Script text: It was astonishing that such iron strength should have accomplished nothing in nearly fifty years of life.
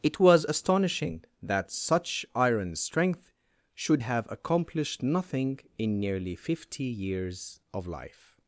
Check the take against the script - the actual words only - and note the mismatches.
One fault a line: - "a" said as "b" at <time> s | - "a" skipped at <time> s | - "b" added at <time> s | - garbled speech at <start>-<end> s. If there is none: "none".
none